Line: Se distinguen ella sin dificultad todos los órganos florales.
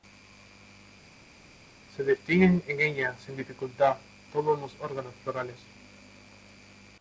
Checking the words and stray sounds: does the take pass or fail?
fail